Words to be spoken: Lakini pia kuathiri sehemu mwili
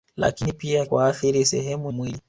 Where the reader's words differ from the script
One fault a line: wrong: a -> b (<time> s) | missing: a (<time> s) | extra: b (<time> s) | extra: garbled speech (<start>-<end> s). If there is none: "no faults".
no faults